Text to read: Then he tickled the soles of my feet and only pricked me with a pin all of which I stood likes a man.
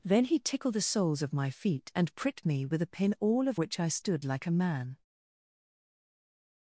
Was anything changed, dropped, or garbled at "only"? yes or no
yes